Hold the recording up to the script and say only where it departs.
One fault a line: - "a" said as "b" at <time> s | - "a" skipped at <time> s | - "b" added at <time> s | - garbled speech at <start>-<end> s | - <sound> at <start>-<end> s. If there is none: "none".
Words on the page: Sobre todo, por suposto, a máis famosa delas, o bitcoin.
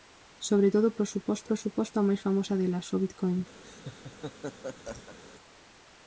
- "por suposto" added at 1.5 s
- laugh at 3.6-5.2 s